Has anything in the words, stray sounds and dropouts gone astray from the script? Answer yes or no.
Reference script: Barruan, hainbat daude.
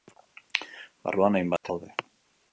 yes